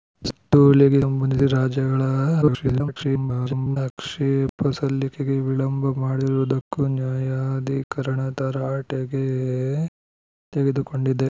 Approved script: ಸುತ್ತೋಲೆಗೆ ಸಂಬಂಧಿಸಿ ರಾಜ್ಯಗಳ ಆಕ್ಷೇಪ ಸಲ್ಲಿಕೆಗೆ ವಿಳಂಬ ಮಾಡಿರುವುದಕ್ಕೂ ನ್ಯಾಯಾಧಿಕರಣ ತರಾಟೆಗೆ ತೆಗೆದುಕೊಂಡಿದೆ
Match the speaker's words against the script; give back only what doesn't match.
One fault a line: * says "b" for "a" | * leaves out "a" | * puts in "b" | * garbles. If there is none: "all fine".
* garbles